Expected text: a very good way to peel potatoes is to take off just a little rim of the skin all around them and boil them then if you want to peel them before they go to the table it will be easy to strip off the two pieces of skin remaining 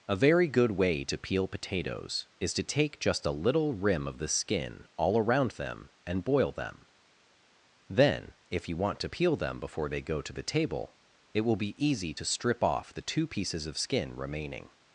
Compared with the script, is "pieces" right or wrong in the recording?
right